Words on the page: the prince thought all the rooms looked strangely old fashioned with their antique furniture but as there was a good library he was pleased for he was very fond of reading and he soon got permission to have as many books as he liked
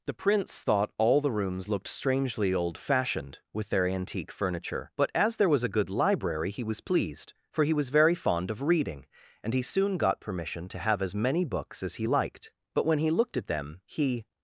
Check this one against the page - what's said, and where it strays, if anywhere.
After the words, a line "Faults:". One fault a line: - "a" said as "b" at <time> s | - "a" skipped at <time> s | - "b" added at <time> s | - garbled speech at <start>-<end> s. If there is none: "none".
the prince thought all the rooms looked strangely old fashioned with their antique furniture but as there was a good library he was pleased for he was very fond of reading and he soon got permission to have as many books as he liked but when he looked at them he
Faults:
- "but when he looked at them he" added at 12.7 s